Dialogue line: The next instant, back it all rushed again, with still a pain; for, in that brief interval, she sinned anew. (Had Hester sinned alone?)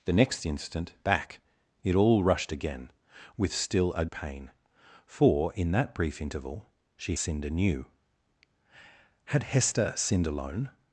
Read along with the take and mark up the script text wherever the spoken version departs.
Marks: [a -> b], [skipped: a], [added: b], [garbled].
The next instant, back it all rushed again, with still a pain; for, in that brief interval, she sinned anew. (Had Hester sinned alone?)